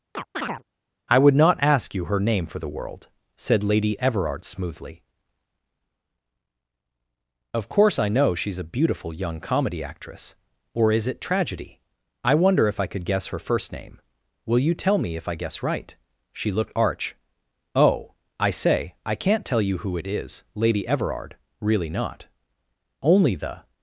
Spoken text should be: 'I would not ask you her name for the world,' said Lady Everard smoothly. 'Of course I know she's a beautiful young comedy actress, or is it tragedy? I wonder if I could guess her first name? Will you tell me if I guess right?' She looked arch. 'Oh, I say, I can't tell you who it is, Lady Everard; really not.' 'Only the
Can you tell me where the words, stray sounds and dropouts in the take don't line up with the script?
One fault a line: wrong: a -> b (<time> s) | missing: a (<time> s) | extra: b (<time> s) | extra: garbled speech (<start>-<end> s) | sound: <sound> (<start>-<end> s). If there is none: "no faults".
sound: chirp (0.1-0.6 s)